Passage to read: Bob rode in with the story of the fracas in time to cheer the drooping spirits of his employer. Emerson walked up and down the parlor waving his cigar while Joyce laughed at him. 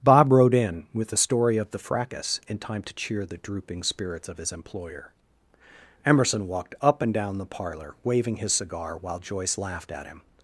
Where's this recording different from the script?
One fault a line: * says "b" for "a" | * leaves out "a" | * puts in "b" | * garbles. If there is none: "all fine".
all fine